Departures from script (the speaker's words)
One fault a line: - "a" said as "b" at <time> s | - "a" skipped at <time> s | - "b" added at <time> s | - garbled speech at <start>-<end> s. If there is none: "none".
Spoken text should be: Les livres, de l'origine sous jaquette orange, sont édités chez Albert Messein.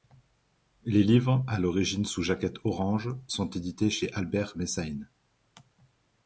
- "de" said as "à" at 1.5 s